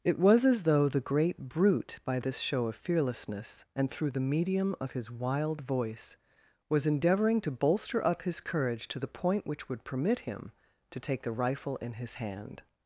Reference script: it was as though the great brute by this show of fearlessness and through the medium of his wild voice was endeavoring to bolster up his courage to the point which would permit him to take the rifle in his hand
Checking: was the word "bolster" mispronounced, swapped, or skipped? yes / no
no